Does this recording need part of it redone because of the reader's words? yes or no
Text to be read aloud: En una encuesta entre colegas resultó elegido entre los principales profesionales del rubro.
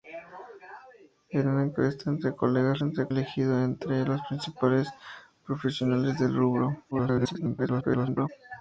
yes